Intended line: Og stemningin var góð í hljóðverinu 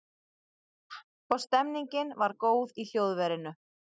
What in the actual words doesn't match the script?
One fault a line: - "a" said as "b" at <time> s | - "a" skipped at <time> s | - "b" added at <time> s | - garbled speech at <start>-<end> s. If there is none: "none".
none